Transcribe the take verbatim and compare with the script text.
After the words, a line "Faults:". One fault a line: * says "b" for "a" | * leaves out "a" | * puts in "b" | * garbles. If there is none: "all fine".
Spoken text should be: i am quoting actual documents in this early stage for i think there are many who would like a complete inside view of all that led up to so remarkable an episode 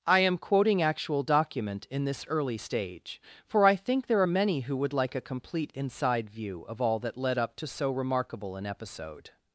i am quoting actual document in this early stage for i think there are many who would like a complete inside view of all that led up to so remarkable an episode
Faults:
* says "document" for "documents"